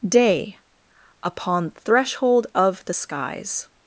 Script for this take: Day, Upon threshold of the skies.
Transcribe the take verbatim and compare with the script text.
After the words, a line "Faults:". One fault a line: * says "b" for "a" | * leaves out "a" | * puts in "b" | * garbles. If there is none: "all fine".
Day, Upon threshold of the skies.
Faults:
all fine